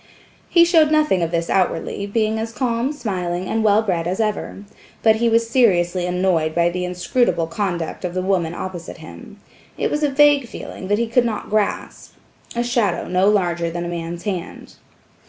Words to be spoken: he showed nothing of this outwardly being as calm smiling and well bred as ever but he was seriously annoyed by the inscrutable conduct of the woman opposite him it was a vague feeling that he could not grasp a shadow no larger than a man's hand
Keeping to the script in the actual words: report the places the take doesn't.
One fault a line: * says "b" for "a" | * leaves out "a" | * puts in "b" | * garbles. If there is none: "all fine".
all fine